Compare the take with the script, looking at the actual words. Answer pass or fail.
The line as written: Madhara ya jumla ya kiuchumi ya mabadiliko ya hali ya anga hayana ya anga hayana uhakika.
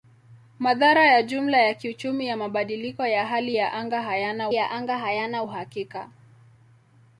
pass